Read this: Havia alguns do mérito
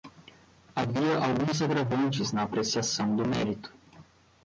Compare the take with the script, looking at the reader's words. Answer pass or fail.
fail